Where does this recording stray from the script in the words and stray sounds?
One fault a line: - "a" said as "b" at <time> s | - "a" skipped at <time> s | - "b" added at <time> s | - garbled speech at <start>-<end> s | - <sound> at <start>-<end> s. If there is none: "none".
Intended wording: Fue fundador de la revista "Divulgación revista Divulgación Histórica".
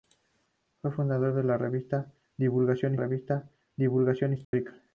- dropout at 4.4-4.5 s